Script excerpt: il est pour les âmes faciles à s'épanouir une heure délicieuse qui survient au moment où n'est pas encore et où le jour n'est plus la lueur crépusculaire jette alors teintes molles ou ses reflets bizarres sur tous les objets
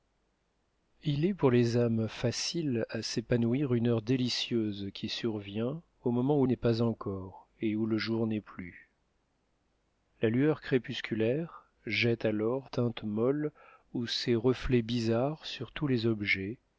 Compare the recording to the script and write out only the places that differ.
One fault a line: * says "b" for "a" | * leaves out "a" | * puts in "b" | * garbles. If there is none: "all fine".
all fine